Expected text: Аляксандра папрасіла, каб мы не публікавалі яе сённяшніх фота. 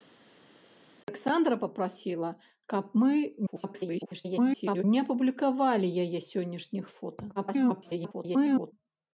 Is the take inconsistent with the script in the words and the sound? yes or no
yes